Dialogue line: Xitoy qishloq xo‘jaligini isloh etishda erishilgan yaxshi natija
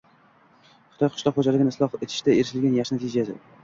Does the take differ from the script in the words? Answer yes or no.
no